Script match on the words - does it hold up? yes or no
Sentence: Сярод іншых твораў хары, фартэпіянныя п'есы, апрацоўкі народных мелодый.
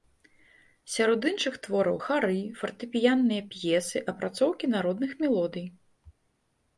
yes